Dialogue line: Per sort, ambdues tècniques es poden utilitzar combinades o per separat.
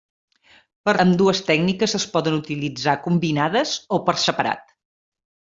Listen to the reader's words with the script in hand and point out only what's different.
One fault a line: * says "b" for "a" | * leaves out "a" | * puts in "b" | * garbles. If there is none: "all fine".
* leaves out "sort"